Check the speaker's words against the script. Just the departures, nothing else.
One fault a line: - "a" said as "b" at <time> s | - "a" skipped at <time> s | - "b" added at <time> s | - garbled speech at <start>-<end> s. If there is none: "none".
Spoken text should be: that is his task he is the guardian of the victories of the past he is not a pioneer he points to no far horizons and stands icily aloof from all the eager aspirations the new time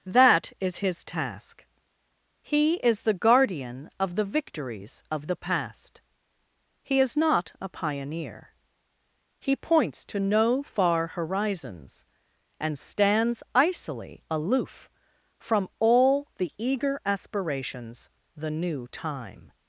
none